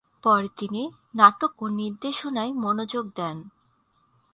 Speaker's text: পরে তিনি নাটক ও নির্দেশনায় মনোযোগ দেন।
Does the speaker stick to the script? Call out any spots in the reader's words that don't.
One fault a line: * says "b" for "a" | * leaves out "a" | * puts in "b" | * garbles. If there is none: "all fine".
all fine